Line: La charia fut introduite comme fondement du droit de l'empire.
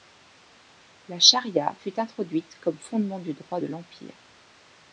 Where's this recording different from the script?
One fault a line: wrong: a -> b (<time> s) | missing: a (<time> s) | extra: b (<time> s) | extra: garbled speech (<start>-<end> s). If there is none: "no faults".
no faults